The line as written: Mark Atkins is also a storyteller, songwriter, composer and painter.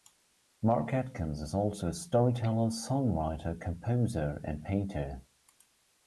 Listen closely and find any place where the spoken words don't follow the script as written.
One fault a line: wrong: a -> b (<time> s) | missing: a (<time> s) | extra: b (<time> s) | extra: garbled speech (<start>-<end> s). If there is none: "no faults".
no faults